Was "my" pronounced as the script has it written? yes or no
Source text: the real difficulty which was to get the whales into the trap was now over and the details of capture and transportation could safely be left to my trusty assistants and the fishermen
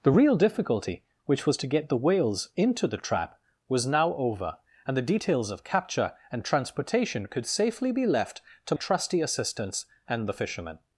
no